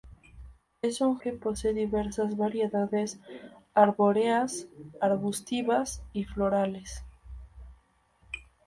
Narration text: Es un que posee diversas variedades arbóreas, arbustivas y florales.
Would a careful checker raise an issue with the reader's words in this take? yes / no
no